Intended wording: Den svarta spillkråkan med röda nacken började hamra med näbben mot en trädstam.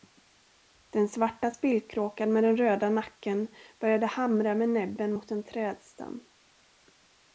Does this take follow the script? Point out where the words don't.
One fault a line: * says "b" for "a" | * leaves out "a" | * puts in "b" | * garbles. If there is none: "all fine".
* puts in "den"